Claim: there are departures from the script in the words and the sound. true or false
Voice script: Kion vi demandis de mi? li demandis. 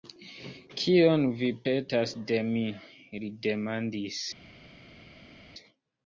true